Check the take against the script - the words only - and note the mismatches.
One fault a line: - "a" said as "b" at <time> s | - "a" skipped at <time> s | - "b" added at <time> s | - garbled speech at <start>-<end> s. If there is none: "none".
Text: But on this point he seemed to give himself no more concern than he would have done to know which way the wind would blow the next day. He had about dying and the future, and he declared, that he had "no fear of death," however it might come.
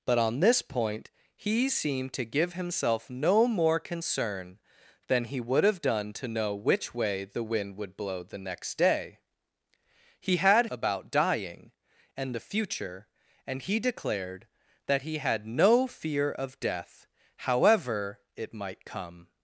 none